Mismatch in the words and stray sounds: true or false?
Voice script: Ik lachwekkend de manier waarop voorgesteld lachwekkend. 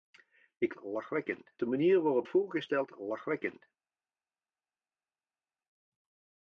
false